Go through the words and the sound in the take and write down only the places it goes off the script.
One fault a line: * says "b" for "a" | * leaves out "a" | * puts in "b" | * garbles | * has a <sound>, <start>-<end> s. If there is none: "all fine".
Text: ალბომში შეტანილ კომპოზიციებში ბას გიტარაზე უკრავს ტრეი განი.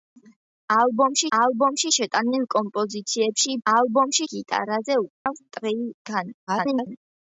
* puts in "ალბომში"
* says "ალბომში" for "ბას"
* has a dropout, 5.1-5.3 s
* garbles